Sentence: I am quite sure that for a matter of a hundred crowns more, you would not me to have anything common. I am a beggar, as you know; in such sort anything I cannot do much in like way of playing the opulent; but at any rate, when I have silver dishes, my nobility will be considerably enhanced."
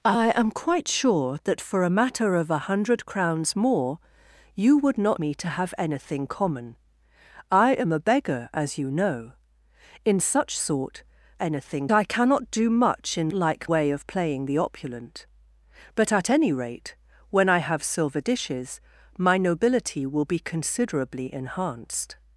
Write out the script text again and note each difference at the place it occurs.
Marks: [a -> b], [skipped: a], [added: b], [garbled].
I am quite sure that for a matter of a hundred crowns more, you would not me to have anything common. I am a beggar, as you know; in such sort anything I cannot do much in like way of playing the opulent; but at any rate, when I have silver dishes, my nobility will be considerably enhanced."